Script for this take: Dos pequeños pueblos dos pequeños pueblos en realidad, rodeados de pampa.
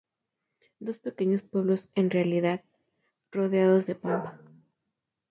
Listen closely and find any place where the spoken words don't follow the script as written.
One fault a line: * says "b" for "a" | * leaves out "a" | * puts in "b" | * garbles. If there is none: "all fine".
* leaves out "dos pequeños pueblos"